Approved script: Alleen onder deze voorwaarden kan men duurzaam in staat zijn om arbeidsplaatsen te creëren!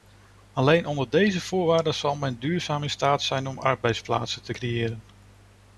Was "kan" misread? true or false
true